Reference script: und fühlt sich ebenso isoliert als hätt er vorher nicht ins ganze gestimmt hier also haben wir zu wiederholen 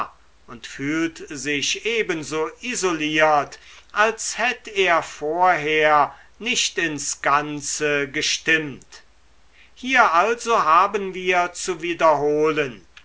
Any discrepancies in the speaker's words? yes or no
no